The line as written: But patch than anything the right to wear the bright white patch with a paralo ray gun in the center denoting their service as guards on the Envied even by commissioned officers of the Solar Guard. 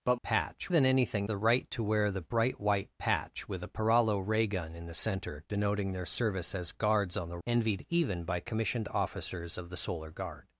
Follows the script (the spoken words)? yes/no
yes